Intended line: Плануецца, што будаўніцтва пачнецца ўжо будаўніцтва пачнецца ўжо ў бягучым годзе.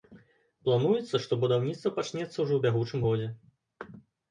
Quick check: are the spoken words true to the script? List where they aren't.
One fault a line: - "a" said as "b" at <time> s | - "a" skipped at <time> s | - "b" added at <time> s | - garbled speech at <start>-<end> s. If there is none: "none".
- "будаўніцтва пачнецца ўжо" skipped at 2.5 s